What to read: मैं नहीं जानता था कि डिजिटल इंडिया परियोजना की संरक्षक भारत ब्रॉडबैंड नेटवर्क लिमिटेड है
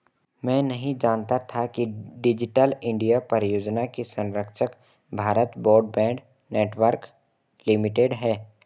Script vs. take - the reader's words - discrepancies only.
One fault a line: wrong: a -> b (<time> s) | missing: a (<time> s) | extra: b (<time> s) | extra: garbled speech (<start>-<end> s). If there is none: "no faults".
no faults